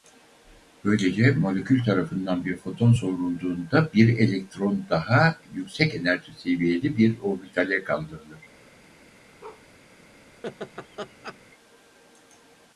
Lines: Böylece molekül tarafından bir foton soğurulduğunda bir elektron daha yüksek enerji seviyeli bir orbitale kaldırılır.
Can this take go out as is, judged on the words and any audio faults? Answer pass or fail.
fail